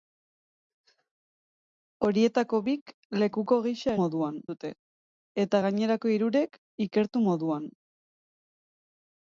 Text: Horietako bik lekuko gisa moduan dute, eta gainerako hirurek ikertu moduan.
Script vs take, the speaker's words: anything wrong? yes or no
no